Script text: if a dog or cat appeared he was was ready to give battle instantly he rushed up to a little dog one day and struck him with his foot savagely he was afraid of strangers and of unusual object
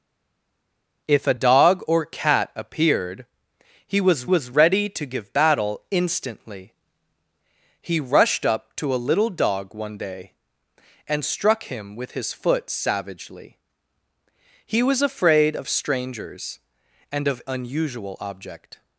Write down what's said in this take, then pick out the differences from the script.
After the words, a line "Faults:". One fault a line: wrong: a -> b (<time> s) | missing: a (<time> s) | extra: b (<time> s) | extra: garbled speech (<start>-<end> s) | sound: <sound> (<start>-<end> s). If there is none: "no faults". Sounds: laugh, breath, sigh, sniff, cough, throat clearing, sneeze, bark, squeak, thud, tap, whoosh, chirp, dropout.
if a dog or cat appeared he was was ready to give battle instantly he rushed up to a little dog one day and struck him with his foot savagely he was afraid of strangers and of unusual object
Faults:
no faults